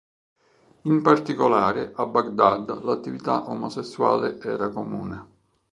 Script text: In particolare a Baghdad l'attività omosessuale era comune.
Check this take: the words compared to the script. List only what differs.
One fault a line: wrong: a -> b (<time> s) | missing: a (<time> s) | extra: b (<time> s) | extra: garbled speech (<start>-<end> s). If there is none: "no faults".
no faults